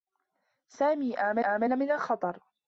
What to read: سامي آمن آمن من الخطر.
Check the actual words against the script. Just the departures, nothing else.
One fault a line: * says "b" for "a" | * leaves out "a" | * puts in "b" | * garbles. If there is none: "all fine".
all fine